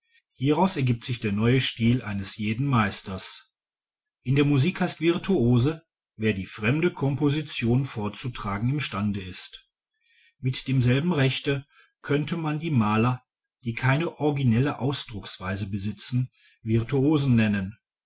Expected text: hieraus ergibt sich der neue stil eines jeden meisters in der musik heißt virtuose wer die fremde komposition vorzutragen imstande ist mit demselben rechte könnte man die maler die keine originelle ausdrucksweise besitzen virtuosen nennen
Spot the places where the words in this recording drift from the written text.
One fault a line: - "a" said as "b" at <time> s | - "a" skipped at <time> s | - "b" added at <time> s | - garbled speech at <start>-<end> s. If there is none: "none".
none